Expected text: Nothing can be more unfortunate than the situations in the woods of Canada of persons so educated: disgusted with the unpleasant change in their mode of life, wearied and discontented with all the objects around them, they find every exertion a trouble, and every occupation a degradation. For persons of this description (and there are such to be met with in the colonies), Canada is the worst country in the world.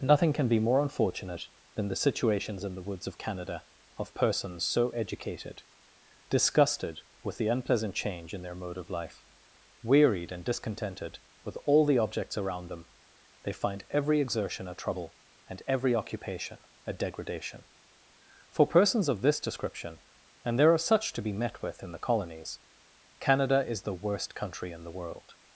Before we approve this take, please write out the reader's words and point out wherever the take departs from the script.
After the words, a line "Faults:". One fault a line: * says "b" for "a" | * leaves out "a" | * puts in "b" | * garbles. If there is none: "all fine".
Nothing can be more unfortunate than the situations in the woods of Canada of persons so educated: disgusted with the unpleasant change in their mode of life, wearied and discontented with all the objects around them, they find every exertion a trouble, and every occupation a degradation. For persons of this description (and there are such to be met with in the colonies), Canada is the worst country in the world.
Faults:
all fine